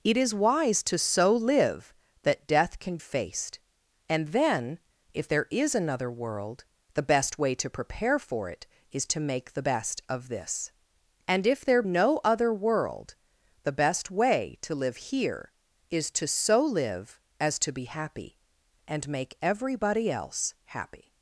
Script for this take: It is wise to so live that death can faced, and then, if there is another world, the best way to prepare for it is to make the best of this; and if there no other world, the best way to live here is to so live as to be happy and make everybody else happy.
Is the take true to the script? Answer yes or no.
yes